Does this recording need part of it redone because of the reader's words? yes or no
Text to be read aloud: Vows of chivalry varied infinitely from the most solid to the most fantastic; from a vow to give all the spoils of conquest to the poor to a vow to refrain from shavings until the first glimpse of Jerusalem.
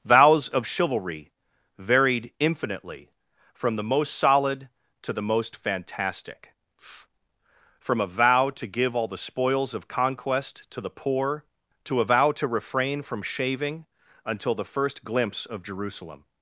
yes